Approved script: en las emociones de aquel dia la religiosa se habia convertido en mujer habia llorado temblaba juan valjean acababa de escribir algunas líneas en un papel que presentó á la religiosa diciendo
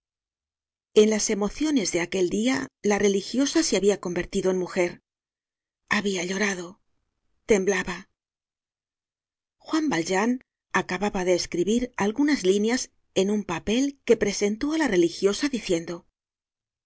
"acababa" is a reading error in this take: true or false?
false